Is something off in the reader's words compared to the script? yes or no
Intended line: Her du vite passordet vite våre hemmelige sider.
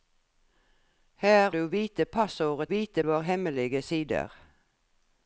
no